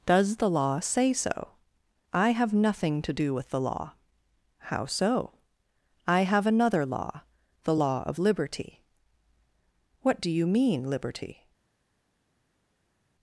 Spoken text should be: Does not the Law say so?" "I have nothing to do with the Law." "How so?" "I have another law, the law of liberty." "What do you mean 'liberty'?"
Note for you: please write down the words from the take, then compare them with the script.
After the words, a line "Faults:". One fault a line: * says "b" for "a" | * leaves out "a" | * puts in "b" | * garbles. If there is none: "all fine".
Does the Law say so?" "I have nothing to do with the Law." "How so?" "I have another law, the law of liberty." "What do you mean 'liberty'?"
Faults:
* leaves out "not"